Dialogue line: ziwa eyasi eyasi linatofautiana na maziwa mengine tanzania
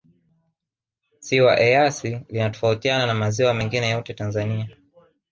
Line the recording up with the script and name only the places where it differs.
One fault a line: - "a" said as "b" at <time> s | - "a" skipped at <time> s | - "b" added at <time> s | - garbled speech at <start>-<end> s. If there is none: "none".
- "eyasi" skipped at 2.2 s
- "yote" added at 3.9 s